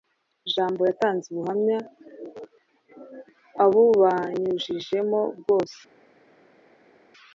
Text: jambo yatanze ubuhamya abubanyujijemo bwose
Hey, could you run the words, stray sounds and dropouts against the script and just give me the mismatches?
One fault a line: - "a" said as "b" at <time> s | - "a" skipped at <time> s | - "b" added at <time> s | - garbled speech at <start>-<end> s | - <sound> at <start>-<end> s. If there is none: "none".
none